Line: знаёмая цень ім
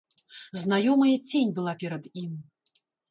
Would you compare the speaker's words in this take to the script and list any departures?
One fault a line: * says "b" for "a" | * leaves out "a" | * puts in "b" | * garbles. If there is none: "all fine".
* puts in "была перад"